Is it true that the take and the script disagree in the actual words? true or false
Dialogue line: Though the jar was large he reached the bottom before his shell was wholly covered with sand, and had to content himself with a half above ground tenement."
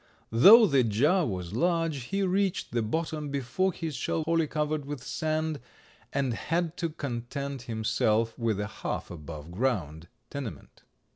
true